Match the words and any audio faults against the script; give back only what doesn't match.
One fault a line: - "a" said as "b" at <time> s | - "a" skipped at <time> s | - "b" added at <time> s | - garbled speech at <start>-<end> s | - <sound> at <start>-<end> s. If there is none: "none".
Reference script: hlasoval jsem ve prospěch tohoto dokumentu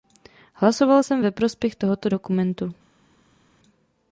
none